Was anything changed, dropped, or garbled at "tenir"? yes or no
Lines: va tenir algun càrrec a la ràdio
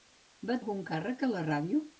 yes